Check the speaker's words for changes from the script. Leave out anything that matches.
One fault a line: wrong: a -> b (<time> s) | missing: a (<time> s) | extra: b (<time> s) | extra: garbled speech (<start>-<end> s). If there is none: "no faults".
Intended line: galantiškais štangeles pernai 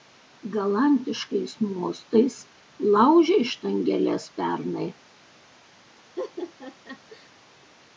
extra: mostais laužei (1.7 s)